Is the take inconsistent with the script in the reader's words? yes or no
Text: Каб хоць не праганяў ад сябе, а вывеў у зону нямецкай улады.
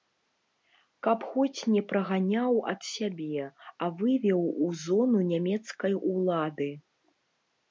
no